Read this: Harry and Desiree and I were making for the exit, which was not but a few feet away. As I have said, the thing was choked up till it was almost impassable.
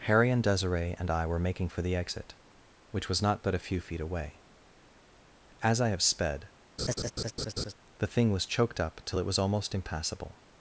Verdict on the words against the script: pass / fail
fail